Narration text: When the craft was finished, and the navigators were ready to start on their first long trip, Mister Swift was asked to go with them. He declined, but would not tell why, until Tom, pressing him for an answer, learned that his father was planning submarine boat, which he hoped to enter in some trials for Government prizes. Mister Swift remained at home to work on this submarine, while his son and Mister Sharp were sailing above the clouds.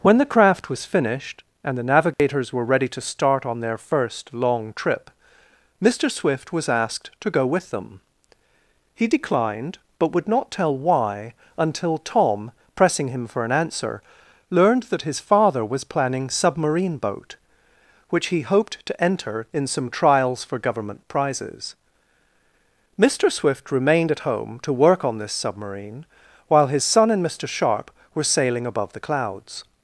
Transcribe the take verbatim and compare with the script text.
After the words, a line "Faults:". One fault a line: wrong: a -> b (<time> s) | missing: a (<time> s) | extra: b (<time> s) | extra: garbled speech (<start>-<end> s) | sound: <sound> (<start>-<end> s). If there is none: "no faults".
When the craft was finished, and the navigators were ready to start on their first long trip, Mister Swift was asked to go with them. He declined, but would not tell why, until Tom, pressing him for an answer, learned that his father was planning submarine boat, which he hoped to enter in some trials for Government prizes. Mister Swift remained at home to work on this submarine, while his son and Mister Sharp were sailing above the clouds.
Faults:
sound: dropout (2.1-2.2 s)